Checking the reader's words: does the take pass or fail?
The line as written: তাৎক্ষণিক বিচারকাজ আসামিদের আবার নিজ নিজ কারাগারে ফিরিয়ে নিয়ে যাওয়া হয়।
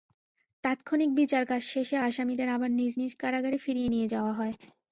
fail